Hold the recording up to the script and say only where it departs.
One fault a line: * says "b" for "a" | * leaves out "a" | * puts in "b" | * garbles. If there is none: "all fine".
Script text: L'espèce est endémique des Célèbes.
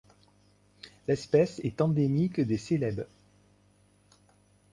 all fine